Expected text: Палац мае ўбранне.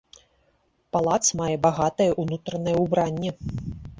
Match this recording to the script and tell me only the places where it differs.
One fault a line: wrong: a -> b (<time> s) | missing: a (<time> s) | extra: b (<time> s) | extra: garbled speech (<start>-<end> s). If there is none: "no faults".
extra: багатае ўнутранае (1.6 s)